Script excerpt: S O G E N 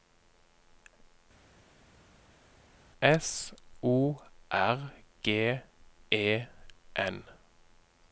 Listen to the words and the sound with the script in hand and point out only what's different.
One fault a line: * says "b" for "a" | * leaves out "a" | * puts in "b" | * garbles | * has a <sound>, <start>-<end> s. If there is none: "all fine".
* puts in "R"